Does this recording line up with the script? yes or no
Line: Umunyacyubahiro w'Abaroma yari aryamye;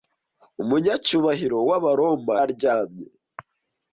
no